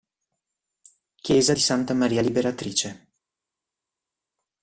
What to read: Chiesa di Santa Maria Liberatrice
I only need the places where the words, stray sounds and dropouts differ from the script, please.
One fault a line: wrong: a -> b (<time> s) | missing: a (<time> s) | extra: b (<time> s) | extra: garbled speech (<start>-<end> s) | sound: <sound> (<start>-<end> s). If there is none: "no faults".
no faults